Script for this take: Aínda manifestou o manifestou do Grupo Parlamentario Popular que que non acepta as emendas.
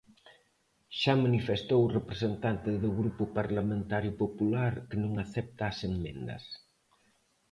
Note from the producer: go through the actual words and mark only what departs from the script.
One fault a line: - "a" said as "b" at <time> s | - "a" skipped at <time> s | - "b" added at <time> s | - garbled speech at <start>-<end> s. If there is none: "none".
- "Aínda" said as "Xa" at 1.0 s
- "manifestou" said as "representante" at 2.0 s
- "que" skipped at 5.0 s